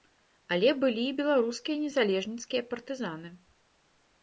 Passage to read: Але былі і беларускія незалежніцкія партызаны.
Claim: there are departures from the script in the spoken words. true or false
false